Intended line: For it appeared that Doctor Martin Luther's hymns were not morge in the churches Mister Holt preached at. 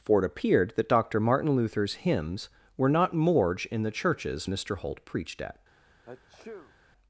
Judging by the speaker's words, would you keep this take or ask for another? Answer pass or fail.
pass